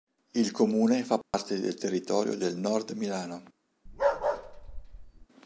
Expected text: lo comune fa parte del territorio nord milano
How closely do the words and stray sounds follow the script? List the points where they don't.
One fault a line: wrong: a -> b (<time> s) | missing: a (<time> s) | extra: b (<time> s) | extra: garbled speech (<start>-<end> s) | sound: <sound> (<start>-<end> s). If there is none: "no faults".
wrong: lo -> il (0.3 s)
sound: dropout (1.2-1.3 s)
extra: del (2.4 s)
sound: bark (3.9-5.3 s)